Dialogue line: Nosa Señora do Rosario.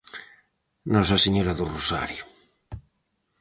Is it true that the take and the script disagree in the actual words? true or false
false